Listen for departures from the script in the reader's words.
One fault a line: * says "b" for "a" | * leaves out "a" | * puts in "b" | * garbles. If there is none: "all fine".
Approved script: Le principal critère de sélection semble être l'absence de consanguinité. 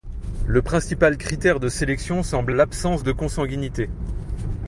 * leaves out "être"